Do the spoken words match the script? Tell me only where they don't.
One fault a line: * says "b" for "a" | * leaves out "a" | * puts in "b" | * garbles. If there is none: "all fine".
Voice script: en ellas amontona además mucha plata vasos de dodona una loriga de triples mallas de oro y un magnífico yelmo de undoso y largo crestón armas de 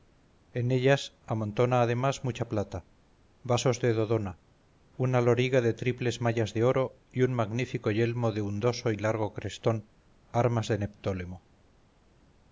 all fine